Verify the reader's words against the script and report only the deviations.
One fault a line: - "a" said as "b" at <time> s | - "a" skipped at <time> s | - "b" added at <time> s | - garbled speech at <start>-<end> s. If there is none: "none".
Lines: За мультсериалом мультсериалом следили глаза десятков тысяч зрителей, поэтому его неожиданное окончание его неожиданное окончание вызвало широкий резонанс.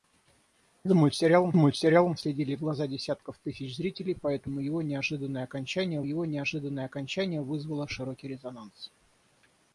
none